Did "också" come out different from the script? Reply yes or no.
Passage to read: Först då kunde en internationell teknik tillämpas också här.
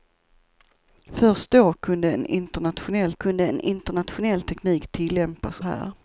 yes